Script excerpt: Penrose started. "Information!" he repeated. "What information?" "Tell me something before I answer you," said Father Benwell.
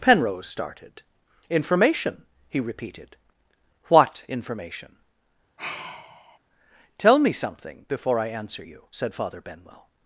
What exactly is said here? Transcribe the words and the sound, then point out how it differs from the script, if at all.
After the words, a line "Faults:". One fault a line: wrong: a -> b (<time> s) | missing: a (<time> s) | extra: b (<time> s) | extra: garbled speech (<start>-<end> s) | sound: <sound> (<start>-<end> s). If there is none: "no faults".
Penrose started. "Information!" he repeated. "What information?" "Tell me something before I answer you," said Father Benwell.
Faults:
sound: sigh (5.6-6.4 s)